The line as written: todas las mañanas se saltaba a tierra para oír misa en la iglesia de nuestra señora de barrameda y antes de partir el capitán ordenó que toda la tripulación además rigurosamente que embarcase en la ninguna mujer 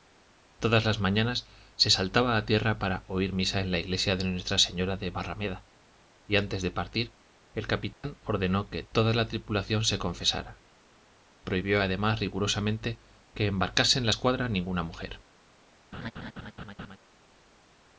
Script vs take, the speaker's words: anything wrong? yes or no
yes